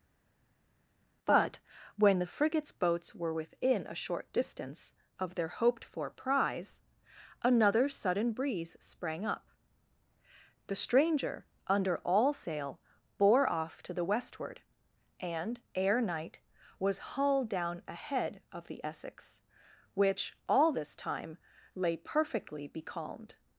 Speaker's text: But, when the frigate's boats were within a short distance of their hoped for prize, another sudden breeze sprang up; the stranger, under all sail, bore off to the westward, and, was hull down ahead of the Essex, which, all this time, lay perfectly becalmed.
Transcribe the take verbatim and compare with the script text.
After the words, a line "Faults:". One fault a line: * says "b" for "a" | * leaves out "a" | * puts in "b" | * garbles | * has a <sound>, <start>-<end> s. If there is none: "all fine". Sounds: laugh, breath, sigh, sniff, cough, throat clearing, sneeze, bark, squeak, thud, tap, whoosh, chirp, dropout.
But, when the frigate's boats were within a short distance of their hoped for prize, another sudden breeze sprang up; the stranger, under all sail, bore off to the westward, and, ere night, was hull down ahead of the Essex, which, all this time, lay perfectly becalmed.
Faults:
* puts in "ere night"